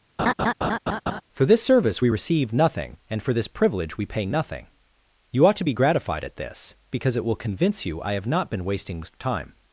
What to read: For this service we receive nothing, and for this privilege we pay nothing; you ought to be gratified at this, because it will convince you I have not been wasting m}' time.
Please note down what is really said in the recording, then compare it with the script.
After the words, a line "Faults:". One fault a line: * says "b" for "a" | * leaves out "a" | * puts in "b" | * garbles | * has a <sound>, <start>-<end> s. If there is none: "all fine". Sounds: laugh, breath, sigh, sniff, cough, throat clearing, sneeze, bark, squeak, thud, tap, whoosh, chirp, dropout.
For this service we receive nothing, and for this privilege we pay nothing; you ought to be gratified at this, because it will convince you I have not been wasting}' time.
Faults:
* has a laugh, 0.2-1.2 s
* leaves out "m"